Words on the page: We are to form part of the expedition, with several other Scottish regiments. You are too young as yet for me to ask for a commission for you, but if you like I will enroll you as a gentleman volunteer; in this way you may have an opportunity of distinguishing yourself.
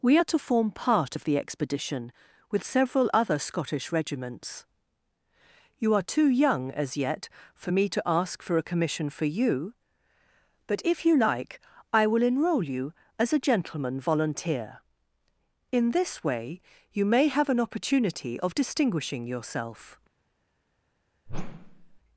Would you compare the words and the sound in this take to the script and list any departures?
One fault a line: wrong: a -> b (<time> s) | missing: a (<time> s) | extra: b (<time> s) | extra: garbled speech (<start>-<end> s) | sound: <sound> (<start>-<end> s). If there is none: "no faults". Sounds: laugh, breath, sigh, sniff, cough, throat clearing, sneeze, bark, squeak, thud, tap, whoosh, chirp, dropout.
sound: whoosh (21.3-22.0 s)